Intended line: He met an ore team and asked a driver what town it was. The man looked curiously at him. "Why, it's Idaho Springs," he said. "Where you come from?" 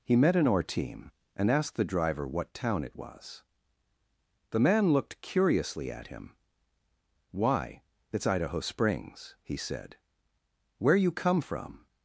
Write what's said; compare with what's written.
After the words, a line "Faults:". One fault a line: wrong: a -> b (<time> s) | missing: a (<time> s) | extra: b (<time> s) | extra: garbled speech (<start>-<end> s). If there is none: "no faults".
He met an ore team and asked the driver what town it was. The man looked curiously at him. "Why, it's Idaho Springs," he said. "Where you come from?"
Faults:
wrong: a -> the (1.8 s)